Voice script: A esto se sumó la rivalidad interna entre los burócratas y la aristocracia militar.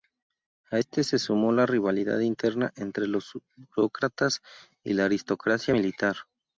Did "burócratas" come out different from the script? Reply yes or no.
no